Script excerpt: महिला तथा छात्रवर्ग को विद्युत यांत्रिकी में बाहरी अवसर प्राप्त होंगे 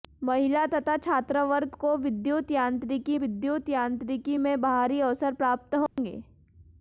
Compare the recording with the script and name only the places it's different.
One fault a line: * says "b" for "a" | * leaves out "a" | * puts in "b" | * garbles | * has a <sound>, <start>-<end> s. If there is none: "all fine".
* puts in "विद्युत यांत्रिकी"
* has a dropout, 5.9-6.0 s